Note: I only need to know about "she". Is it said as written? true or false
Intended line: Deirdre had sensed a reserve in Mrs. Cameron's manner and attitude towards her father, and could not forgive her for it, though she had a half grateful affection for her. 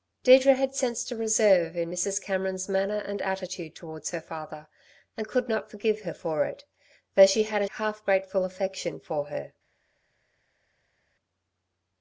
true